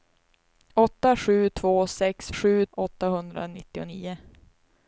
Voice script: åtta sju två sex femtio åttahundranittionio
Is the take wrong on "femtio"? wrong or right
wrong